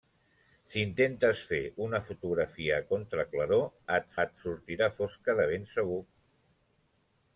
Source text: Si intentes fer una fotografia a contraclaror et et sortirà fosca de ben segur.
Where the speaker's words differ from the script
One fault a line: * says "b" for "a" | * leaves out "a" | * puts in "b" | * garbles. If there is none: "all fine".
all fine